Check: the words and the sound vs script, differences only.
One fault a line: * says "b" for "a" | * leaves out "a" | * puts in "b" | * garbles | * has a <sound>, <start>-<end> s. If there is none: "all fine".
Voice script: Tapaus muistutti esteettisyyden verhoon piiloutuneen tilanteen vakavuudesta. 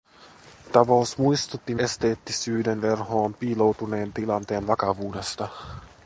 all fine